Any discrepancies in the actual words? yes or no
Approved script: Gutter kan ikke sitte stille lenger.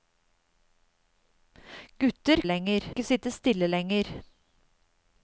yes